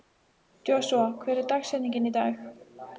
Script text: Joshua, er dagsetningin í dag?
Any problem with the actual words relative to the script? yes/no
yes